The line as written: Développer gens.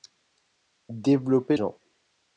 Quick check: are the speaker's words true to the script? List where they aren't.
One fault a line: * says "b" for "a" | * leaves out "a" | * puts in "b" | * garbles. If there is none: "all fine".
all fine